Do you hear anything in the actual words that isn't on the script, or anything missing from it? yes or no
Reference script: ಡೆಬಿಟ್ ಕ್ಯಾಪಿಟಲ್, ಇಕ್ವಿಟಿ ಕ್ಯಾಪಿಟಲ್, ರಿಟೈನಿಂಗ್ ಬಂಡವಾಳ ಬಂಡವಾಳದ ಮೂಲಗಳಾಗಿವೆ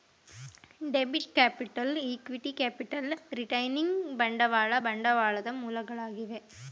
no